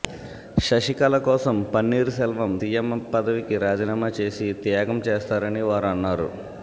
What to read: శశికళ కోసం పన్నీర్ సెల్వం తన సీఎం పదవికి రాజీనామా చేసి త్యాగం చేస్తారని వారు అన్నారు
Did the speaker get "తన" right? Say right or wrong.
wrong